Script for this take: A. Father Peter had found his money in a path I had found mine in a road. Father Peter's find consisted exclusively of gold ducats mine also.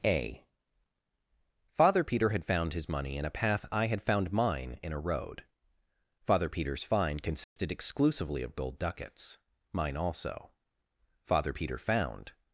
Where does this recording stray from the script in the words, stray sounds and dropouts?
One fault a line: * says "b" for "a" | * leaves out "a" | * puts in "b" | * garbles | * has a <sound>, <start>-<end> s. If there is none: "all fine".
* has a dropout, 7.4-7.6 s
* puts in "Father Peter found"